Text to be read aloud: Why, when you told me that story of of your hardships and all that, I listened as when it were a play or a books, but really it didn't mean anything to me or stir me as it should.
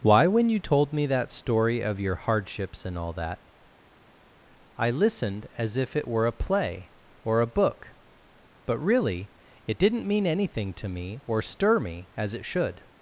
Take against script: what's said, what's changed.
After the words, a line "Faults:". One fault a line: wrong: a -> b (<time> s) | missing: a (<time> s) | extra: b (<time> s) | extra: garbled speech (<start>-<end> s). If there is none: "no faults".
Why, when you told me that story of your hardships and all that, I listened as if it were a play or a book, but really it didn't mean anything to me or stir me as it should.
Faults:
missing: of (2.0 s)
wrong: when -> if (5.8 s)
wrong: books -> book (7.5 s)